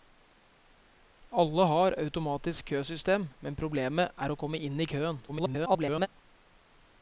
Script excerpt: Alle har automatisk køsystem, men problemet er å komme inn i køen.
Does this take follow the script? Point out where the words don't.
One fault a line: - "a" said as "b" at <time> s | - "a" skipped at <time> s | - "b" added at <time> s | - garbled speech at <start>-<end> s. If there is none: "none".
- garbled speech at 5.3-6.1 s